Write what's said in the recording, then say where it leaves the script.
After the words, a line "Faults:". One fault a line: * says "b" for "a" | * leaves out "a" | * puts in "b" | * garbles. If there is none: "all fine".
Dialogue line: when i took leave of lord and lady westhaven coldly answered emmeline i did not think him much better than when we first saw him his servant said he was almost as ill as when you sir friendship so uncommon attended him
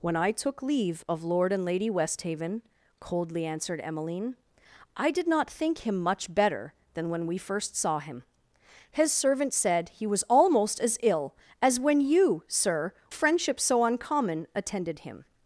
when i took leave of lord and lady westhaven coldly answered emmeline i did not think him much better than when we first saw him his servant said he was almost as ill as when you sir friendship so uncommon attended him
Faults:
all fine